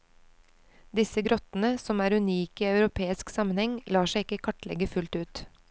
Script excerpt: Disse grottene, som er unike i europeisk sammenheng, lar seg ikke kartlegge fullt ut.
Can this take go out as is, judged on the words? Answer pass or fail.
pass